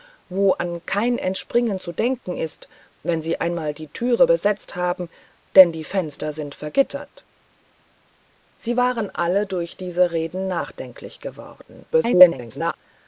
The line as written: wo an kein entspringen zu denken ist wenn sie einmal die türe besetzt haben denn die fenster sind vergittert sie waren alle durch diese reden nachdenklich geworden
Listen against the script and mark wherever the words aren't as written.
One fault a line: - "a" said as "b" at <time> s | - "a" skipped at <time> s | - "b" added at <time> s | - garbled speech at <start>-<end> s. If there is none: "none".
- garbled speech at 11.9-12.8 s